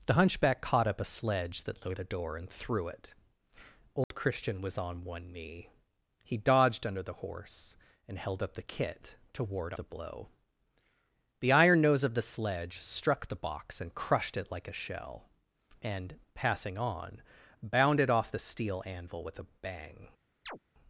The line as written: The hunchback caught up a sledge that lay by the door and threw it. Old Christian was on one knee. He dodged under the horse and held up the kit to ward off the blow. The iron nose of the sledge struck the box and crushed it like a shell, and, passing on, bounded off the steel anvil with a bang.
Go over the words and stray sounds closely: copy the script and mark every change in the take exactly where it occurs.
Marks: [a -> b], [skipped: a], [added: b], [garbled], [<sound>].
The hunchback caught up a sledge that lay [skipped: by] the door and threw it. Old [dropout] Christian was on one knee. He dodged under the horse and held up the kit to ward [skipped: off] the blow. The iron nose of the sledge struck the box and crushed it like a shell, and, passing on, bounded off the steel anvil with a bang. [chirp]